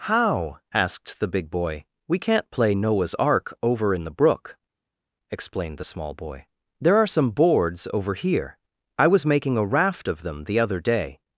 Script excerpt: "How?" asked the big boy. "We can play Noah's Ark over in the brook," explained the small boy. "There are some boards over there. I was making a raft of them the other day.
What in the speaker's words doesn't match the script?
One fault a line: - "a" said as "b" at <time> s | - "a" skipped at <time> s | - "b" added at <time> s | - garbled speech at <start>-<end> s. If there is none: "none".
- "can" said as "can't" at 2.2 s
- "there" said as "here" at 8.1 s